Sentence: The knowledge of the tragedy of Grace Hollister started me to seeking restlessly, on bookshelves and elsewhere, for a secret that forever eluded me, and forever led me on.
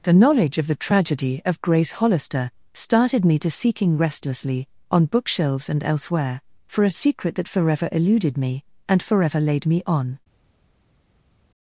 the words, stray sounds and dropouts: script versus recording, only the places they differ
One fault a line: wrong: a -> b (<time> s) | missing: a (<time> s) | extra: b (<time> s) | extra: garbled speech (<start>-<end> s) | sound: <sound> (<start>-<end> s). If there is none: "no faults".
wrong: led -> laid (9.4 s)